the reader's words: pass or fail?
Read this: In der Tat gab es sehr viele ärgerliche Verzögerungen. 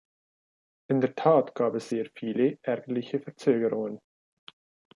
pass